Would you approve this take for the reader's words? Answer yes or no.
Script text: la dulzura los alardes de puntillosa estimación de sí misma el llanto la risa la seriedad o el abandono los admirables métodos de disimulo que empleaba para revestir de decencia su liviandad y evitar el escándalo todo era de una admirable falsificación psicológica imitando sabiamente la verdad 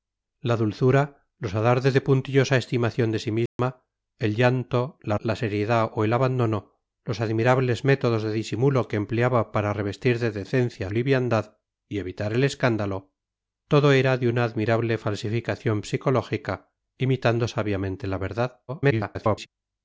no